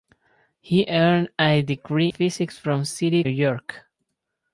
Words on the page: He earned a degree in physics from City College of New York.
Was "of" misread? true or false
true